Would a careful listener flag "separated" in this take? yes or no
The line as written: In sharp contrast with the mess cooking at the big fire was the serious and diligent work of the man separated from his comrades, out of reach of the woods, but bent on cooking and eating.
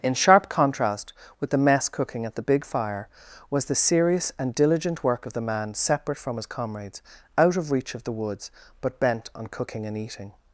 yes